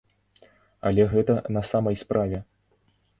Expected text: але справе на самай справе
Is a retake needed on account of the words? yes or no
yes